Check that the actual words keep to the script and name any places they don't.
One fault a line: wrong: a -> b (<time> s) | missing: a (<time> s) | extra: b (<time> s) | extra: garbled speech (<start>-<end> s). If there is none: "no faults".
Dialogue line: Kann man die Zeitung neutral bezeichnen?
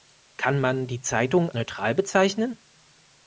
no faults